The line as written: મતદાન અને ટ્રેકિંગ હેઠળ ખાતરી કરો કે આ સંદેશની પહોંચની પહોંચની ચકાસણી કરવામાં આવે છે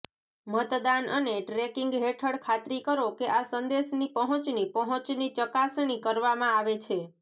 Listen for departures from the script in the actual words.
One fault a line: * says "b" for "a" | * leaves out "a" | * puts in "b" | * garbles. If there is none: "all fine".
all fine